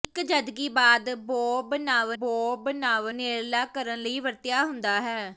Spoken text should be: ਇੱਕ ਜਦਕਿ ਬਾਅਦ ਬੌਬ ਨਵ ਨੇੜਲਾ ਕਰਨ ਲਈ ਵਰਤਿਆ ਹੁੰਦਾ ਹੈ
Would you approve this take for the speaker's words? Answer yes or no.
no